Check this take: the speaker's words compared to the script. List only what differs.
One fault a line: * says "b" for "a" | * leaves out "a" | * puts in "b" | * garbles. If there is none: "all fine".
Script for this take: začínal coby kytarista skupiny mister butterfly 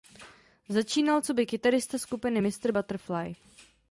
all fine